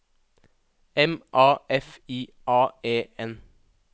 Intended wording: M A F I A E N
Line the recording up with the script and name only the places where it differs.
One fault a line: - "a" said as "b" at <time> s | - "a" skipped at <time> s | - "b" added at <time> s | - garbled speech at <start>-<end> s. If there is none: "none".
none